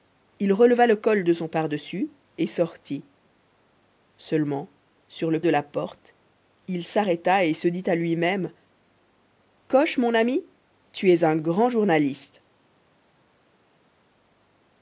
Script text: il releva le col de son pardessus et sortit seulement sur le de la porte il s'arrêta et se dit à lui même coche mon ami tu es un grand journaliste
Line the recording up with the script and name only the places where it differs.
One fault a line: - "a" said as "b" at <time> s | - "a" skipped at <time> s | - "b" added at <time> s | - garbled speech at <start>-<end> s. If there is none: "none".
none